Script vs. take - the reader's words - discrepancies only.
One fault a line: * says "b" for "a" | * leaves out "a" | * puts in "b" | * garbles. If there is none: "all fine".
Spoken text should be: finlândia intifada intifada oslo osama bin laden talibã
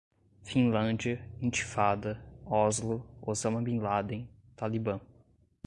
* leaves out "intifada"